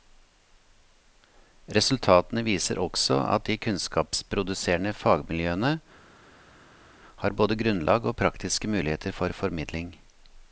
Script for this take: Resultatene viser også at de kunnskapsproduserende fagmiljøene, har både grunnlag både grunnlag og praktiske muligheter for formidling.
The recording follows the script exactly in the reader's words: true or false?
false